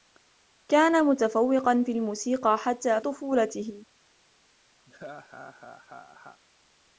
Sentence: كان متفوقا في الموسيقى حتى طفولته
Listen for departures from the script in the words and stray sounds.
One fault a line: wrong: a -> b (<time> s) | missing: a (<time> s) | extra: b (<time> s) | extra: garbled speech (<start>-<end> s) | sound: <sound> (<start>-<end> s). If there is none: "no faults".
sound: laugh (4.9-6.4 s)